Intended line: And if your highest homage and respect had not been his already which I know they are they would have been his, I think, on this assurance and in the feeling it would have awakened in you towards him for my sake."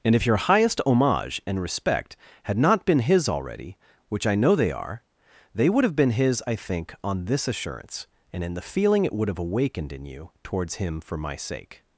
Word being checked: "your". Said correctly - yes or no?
yes